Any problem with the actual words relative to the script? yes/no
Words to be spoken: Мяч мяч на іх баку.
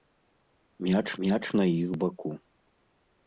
no